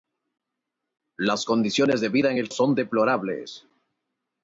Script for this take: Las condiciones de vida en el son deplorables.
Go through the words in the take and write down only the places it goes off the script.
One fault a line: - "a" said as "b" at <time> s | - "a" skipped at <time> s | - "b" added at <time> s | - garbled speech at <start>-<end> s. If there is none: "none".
none